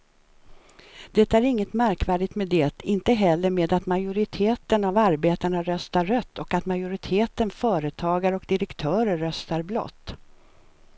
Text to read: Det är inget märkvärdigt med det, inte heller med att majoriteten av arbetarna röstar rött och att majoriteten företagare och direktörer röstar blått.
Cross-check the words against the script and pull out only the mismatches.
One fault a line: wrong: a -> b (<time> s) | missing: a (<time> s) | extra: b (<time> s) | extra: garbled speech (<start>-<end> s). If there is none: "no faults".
no faults